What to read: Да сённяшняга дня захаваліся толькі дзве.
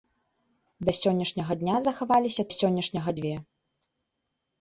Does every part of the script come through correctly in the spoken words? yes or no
no